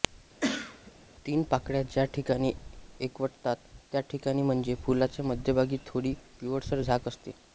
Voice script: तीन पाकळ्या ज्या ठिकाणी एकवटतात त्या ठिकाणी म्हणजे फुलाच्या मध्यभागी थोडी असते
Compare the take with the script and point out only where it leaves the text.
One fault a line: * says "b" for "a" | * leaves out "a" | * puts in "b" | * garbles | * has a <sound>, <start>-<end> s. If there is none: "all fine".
* has a cough, 0.4-0.9 s
* puts in "पिवळसर झाक"